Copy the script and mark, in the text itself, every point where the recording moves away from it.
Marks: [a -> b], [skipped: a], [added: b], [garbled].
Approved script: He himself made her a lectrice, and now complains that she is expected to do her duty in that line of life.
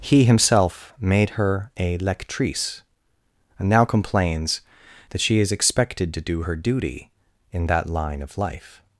He himself made her a lectrice, and now complains that she is expected to do her duty in that line of life.